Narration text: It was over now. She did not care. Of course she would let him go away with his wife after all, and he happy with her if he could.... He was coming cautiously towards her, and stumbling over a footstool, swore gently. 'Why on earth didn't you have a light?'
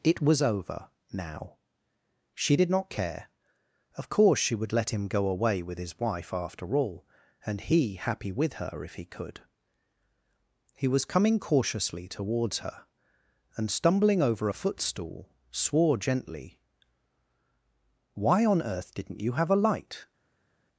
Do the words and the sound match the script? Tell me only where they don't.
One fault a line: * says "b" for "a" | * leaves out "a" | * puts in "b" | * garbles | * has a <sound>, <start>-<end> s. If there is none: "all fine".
all fine